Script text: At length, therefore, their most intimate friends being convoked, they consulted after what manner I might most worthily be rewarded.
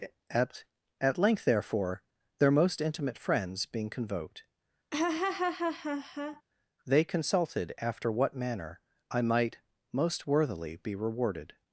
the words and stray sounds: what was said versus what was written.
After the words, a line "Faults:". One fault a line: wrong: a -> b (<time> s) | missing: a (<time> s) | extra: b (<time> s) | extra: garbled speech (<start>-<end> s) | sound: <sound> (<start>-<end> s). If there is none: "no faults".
At at length, therefore, their most intimate friends being convoked, they consulted after what manner I might most worthily be rewarded.
Faults:
extra: at (1.0 s)
sound: laugh (4.9-6.4 s)